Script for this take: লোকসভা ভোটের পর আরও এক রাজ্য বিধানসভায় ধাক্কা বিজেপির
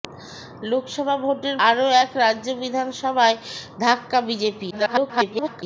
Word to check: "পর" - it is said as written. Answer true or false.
false